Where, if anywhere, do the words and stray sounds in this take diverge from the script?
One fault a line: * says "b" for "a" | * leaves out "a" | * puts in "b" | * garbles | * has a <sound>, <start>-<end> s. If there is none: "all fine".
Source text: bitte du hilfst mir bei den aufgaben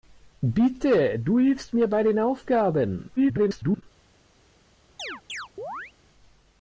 * garbles
* has a chirp, 5.0-5.9 s